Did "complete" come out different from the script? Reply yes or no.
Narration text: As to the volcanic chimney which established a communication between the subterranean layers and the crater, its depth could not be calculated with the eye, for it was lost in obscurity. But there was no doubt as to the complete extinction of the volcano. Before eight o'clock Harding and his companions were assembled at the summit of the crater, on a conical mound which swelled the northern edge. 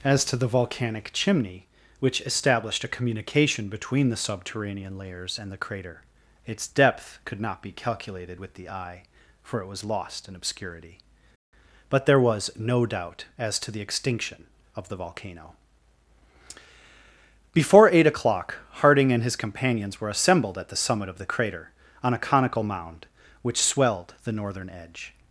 yes